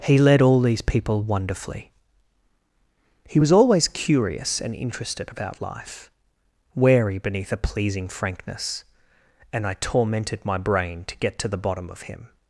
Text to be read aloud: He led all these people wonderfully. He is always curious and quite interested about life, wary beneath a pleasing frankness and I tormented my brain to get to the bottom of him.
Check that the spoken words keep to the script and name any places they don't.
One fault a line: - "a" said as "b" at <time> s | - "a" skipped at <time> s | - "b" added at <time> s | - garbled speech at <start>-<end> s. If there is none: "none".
- "is" said as "was" at 3.4 s
- "quite" skipped at 4.7 s